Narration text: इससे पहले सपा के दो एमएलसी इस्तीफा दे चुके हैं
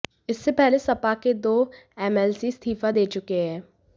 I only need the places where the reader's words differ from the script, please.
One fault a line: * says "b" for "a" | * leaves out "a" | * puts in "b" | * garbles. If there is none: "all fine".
all fine